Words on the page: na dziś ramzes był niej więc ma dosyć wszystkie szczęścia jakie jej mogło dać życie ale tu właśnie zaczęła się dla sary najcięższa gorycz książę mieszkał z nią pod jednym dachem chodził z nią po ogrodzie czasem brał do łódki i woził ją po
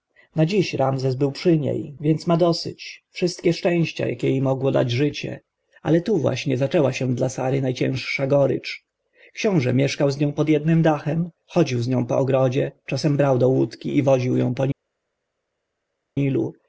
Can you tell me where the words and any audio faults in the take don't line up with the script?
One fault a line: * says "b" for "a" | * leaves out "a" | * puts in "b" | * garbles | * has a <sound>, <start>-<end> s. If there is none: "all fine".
* puts in "przy"